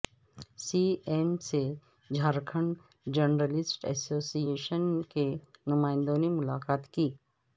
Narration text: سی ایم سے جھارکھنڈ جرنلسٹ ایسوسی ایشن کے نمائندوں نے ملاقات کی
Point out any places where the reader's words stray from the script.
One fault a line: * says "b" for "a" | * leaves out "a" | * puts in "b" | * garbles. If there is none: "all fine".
all fine